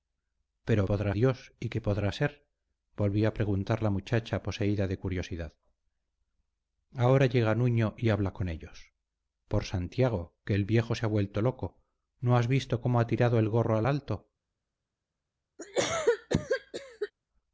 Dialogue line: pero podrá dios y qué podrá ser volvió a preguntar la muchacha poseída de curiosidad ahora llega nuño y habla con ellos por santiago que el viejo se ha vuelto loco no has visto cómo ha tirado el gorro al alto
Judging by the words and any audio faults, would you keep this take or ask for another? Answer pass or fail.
fail